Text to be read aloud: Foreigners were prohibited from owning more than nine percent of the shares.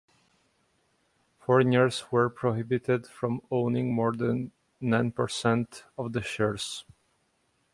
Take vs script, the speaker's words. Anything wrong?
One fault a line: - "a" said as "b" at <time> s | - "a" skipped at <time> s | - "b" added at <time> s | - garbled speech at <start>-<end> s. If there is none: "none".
none